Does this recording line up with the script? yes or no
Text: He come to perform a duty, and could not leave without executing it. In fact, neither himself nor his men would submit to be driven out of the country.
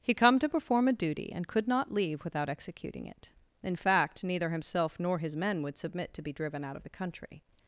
yes